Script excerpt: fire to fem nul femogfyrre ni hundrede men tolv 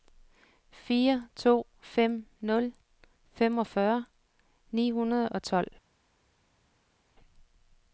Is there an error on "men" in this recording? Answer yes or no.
yes